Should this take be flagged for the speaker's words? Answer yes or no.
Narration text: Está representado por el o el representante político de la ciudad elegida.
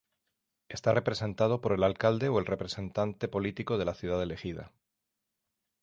yes